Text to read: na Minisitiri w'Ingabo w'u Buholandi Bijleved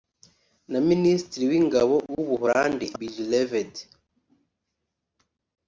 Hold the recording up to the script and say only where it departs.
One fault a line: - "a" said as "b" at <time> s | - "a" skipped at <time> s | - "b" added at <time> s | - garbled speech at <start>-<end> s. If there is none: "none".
none